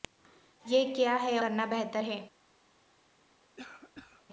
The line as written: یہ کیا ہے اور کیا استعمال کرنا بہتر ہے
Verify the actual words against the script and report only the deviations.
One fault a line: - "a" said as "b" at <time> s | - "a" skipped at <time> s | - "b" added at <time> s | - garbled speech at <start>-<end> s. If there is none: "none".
- "اور کیا استعمال" skipped at 1.4 s